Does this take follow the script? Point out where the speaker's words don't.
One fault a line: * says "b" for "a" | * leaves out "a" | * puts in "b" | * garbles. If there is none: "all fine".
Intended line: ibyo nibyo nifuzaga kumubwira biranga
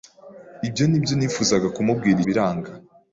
all fine